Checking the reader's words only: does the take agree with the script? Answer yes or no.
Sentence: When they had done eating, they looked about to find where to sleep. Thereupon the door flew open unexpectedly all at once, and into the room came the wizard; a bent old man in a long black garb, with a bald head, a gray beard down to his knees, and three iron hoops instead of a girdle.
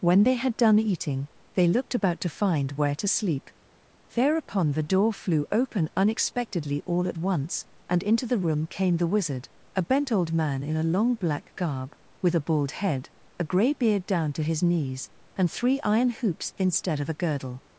yes